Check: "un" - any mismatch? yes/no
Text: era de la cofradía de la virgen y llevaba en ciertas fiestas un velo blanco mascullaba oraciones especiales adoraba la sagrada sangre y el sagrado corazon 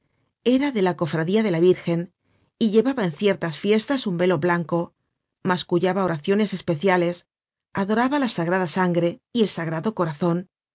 no